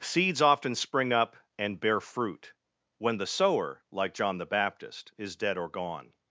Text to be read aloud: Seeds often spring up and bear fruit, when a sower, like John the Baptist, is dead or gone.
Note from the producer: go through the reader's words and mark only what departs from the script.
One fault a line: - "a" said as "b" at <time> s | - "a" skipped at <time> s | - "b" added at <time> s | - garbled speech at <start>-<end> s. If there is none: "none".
- "a" said as "the" at 3.2 s